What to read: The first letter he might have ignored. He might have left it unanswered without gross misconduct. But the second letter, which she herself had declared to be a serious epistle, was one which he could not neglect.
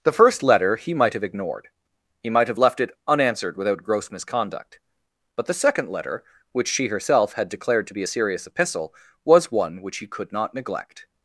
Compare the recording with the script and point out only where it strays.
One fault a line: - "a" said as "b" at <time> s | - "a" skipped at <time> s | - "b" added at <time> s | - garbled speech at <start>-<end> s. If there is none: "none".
none